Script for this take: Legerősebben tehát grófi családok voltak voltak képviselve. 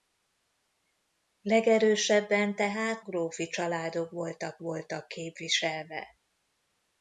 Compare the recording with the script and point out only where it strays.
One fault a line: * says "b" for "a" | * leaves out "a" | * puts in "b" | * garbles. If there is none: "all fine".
all fine